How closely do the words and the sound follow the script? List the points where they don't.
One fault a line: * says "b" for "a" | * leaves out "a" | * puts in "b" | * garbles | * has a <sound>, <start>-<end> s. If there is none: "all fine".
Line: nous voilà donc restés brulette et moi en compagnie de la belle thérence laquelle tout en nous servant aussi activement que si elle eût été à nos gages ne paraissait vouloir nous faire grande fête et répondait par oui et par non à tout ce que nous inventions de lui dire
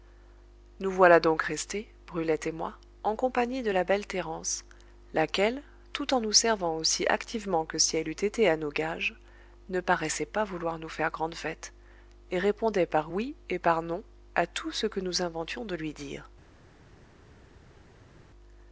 * puts in "pas"